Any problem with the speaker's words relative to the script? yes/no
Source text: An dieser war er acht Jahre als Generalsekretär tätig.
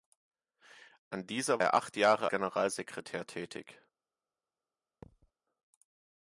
yes